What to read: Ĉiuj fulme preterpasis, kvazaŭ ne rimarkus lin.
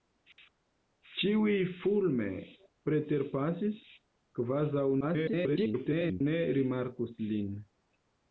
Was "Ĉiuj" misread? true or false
false